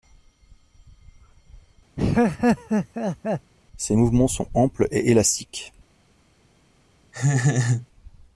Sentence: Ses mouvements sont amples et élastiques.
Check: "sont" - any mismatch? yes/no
no